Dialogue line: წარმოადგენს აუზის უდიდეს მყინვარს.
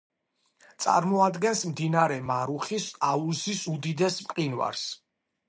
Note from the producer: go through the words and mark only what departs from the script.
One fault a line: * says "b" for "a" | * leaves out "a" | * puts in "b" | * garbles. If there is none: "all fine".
* puts in "მდინარე მარუხის"